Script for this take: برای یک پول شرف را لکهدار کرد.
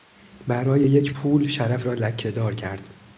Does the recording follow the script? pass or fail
pass